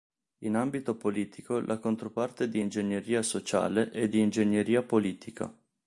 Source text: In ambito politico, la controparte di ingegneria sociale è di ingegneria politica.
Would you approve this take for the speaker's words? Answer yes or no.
yes